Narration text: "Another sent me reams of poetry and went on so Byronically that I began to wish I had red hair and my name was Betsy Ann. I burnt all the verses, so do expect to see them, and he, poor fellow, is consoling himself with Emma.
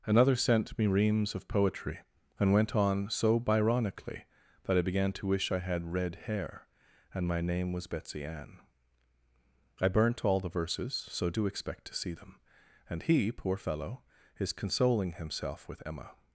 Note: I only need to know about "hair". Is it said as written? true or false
true